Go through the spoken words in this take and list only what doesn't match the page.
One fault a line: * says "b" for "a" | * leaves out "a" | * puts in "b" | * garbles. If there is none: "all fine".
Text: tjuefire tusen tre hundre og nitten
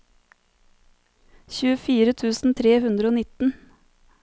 all fine